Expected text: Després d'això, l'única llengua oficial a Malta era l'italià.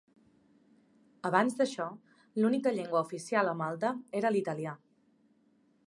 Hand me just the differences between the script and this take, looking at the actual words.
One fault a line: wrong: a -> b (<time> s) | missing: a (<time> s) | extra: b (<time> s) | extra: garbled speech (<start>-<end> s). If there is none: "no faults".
wrong: Després -> Abans (1.3 s)